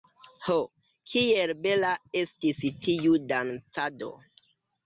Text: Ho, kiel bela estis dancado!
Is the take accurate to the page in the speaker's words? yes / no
no